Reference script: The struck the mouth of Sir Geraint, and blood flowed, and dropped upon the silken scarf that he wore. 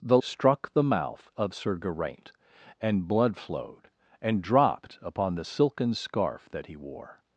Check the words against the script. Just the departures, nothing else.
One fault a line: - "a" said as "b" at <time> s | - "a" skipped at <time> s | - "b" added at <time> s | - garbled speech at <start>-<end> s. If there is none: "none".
none